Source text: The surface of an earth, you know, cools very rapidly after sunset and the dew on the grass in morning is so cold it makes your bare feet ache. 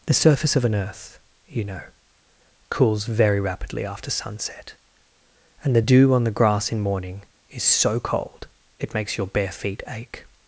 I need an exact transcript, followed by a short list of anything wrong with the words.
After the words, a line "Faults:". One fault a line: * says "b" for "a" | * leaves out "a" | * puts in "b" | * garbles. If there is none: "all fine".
The surface of an earth, you know, cools very rapidly after sunset and the dew on the grass in morning is so cold it makes your bare feet ache.
Faults:
all fine